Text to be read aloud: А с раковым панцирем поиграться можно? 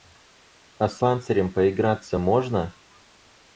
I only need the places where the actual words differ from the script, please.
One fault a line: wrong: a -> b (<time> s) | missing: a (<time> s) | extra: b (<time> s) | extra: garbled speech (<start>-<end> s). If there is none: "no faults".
missing: раковым (1.0 s)